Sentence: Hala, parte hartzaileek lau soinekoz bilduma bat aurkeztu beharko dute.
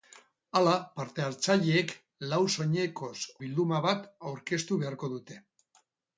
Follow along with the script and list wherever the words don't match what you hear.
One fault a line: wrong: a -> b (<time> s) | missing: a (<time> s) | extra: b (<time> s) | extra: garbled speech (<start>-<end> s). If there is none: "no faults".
no faults